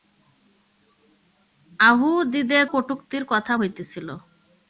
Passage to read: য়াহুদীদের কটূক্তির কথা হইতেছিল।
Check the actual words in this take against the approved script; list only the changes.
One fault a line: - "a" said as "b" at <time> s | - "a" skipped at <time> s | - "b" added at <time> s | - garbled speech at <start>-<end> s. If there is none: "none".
none